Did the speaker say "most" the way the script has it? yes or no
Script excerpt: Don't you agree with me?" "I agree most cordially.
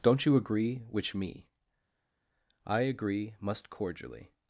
no